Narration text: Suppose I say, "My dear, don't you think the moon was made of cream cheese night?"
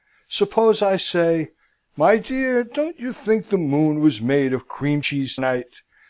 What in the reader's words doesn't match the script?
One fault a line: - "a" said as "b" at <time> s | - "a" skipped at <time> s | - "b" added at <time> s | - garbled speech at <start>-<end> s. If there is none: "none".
none